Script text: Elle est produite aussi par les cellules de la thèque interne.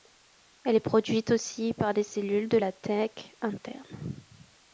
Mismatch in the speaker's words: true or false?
false